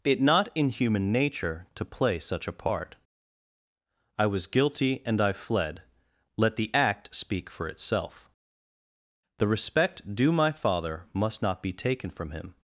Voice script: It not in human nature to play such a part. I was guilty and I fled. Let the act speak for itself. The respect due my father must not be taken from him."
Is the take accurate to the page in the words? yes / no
yes